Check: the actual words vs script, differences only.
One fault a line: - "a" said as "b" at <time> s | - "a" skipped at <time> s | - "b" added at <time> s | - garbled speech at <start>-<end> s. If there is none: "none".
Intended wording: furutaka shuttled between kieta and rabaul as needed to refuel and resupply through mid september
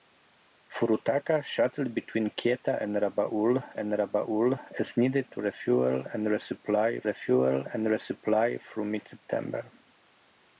- "and rabaul" added at 3.8 s
- "refuel and resupply" added at 7.0 s